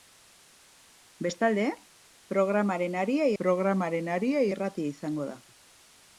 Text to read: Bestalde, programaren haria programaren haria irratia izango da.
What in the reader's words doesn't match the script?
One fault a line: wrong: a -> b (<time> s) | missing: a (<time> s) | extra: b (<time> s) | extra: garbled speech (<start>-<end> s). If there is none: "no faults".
no faults